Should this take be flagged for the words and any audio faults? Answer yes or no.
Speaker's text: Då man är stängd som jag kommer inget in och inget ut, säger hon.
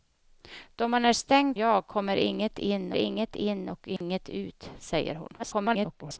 yes